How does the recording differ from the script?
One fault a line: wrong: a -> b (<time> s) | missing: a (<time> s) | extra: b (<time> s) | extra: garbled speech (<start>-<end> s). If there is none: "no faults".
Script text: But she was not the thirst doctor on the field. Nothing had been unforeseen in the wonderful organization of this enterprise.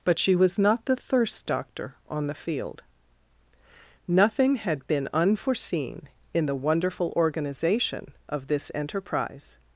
no faults